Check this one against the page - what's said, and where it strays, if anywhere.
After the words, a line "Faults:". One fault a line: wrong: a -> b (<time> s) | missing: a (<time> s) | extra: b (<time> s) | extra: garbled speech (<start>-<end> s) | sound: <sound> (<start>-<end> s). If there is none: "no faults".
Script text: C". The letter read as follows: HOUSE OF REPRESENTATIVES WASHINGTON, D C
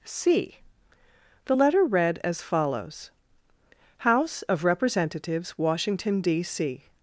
C". The letter read as follows: HOUSE OF REPRESENTATIVES WASHINGTON, D C
Faults:
no faults